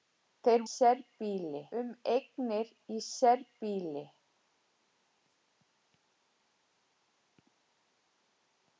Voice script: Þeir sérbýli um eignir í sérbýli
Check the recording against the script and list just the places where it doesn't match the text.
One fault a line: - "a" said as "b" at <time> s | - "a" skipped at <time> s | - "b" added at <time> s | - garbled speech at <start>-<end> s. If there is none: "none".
none